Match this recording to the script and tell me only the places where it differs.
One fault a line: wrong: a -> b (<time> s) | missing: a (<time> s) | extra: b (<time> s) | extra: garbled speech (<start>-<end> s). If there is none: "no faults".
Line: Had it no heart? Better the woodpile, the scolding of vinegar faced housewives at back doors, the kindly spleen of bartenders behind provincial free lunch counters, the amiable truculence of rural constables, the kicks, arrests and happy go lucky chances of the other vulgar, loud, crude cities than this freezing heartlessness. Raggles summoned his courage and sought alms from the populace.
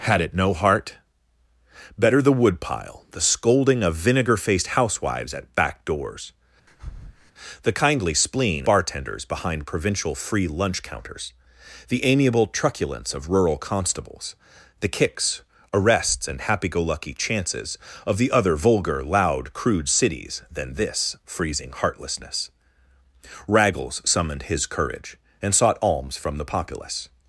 missing: of (8.7 s)